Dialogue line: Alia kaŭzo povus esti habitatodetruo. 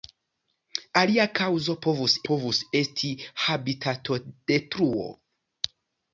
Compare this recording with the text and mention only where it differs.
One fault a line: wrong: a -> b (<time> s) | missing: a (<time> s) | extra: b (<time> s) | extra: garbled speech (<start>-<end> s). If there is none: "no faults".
extra: povus (2.3 s)